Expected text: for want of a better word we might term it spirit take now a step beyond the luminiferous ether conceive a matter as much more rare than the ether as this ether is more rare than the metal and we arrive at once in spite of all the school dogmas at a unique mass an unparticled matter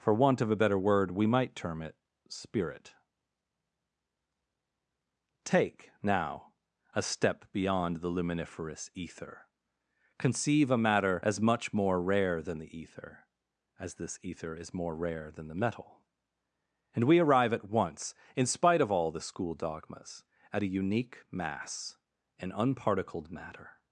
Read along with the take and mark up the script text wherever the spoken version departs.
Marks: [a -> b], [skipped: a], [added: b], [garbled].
for want of a better word we might term it spirit take now a step beyond the luminiferous ether conceive a matter as much more rare than the ether as this ether is more rare than the metal and we arrive at once in spite of all the school dogmas at a unique mass an unparticled matter